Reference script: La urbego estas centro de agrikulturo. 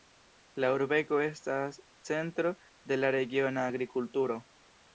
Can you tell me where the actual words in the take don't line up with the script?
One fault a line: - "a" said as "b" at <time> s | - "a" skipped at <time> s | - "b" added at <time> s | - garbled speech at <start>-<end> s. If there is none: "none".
- "la regiona" added at 3.0 s